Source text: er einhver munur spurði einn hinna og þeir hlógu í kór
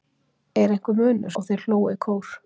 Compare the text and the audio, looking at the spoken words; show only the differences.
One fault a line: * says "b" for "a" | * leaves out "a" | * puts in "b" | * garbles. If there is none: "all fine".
* leaves out "spurði einn hinna"